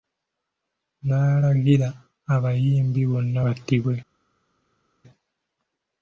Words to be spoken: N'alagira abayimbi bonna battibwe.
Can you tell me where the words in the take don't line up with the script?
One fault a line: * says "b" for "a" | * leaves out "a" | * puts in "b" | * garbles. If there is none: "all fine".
all fine